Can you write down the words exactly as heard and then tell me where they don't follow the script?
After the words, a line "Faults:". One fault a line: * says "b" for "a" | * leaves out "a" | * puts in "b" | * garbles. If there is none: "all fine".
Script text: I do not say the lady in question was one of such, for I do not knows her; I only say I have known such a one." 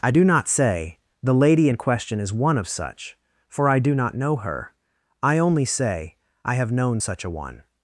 I do not say the lady in question is one of such, for I do not know her; I only say I have known such a one."
Faults:
* says "is" for "was"
* says "know" for "knows"